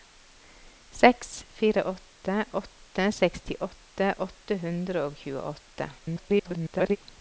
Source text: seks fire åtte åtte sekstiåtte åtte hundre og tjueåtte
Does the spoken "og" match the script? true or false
true